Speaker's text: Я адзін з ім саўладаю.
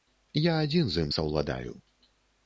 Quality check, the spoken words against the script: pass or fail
pass